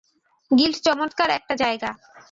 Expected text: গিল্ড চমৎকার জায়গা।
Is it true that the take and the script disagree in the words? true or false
true